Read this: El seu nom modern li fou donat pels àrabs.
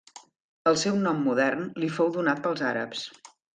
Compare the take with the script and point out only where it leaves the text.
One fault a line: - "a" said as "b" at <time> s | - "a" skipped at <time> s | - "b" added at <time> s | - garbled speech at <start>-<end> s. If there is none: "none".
none